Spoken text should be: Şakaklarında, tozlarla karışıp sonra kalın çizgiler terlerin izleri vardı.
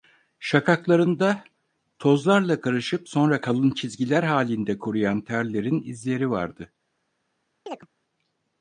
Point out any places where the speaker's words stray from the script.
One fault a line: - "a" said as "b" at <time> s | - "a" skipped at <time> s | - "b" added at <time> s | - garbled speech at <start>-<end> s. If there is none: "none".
- "halinde kuruyan" added at 4.2 s